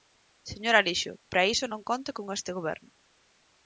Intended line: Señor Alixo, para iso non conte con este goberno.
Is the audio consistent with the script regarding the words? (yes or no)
yes